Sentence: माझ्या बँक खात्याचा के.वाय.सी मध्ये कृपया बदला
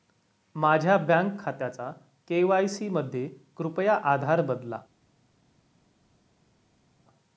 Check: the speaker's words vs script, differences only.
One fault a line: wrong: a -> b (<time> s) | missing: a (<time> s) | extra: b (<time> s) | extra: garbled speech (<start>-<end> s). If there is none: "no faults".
extra: आधार (4.0 s)